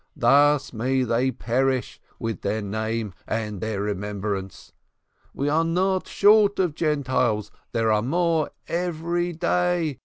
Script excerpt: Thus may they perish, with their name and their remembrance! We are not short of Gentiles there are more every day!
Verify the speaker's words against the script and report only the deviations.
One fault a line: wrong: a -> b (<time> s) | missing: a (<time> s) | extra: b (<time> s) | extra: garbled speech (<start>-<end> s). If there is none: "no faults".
no faults